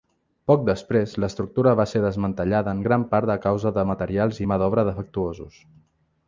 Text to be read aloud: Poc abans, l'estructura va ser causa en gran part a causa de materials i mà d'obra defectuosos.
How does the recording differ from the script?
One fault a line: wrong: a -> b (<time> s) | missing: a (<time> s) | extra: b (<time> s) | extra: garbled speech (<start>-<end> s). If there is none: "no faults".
wrong: abans -> després (0.7 s)
wrong: causa -> desmantellada (2.0 s)